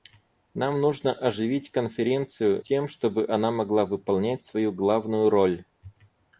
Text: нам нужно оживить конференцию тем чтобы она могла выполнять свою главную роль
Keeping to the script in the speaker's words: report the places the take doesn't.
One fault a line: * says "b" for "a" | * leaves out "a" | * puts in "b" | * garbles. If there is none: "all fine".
all fine